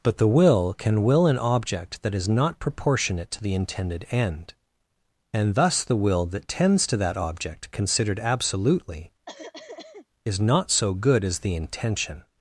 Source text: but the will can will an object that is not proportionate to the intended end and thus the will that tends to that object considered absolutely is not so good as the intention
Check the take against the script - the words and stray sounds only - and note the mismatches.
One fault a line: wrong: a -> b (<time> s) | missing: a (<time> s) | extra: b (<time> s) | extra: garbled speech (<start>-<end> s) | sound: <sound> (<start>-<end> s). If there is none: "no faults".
sound: cough (9.3-10.1 s)